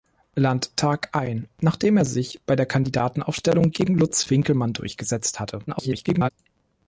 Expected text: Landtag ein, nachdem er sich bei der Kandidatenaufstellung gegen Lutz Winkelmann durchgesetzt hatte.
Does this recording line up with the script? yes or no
no